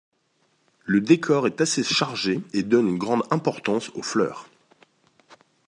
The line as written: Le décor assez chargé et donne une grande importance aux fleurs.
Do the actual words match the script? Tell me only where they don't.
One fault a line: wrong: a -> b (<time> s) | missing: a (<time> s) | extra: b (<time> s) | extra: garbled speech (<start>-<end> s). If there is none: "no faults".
extra: est (1.4 s)